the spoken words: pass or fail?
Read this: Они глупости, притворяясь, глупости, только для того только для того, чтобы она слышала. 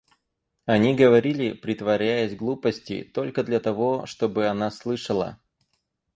fail